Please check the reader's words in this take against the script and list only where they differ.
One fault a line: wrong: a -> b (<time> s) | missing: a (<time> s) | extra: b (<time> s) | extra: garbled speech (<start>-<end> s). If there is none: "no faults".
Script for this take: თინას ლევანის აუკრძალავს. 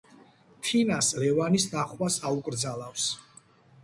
extra: ნახვას (1.7 s)